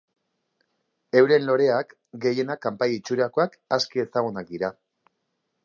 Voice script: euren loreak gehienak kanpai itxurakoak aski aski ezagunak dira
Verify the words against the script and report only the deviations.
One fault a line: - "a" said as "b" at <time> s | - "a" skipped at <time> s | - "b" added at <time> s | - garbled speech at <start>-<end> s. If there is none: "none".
- "aski" skipped at 4.0 s